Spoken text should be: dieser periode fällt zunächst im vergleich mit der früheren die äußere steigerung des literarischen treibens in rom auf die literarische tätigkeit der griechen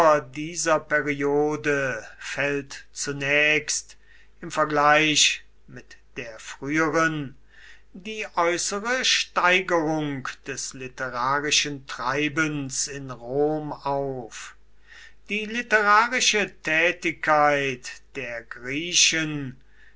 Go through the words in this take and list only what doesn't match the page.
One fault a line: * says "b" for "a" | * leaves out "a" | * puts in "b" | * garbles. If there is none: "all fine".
all fine